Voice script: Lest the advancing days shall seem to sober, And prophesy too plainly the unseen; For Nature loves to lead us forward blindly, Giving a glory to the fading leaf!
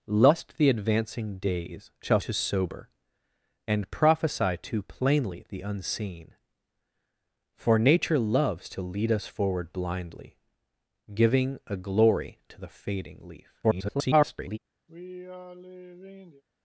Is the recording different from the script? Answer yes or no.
yes